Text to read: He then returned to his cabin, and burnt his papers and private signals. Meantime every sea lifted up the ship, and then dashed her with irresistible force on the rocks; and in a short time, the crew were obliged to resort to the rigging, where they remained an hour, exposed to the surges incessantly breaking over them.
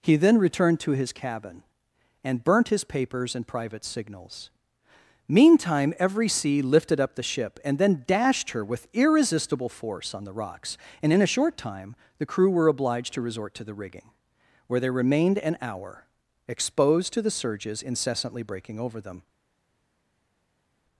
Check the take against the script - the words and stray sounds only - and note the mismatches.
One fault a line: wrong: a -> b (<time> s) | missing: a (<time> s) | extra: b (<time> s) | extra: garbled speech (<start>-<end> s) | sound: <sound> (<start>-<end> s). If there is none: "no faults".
no faults